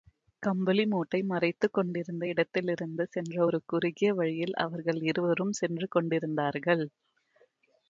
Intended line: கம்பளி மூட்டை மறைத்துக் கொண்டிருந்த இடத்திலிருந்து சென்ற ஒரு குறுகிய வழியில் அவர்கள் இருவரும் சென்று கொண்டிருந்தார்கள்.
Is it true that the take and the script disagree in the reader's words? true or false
false